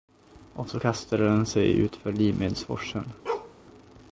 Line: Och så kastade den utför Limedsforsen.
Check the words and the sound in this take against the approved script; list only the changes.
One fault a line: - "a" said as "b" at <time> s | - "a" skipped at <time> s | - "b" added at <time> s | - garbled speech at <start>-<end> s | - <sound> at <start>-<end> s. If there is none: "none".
- "sig" added at 1.5 s
- bark at 3.3-3.6 s